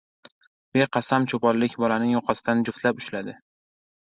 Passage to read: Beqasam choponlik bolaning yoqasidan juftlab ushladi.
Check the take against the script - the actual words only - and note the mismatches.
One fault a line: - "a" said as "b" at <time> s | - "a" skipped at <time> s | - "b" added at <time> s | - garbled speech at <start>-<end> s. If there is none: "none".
none